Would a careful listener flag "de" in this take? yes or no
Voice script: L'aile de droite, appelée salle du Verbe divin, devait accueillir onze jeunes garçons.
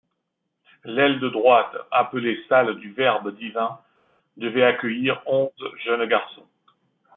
no